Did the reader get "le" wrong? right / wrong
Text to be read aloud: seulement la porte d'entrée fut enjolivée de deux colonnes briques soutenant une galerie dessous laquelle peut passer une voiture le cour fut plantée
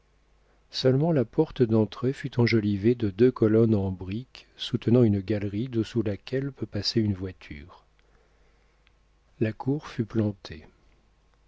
wrong